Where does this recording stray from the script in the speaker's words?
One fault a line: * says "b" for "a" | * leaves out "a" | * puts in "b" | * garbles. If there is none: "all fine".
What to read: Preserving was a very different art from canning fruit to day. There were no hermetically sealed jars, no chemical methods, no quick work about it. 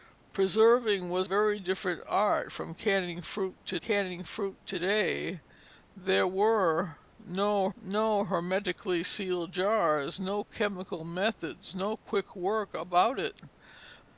* leaves out "a"
* puts in "canning fruit to"
* puts in "no"